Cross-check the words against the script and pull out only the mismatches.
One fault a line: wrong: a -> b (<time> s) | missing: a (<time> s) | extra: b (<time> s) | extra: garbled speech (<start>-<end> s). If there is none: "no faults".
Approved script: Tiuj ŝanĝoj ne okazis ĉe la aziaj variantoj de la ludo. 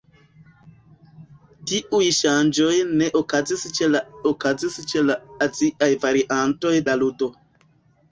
extra: okazis ĉe la (4.3 s)
missing: de (6.8 s)